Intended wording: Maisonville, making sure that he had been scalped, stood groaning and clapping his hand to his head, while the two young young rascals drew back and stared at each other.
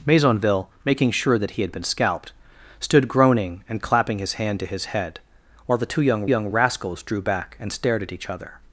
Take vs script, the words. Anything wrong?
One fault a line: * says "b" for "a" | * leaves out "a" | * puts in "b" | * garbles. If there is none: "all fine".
all fine